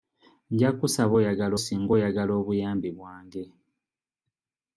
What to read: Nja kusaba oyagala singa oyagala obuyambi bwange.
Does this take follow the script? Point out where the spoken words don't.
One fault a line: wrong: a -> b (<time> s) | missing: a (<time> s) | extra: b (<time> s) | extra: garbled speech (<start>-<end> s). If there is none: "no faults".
no faults